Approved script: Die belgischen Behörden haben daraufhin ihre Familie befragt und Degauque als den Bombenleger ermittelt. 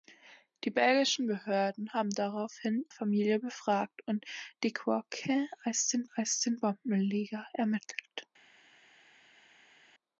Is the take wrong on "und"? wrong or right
right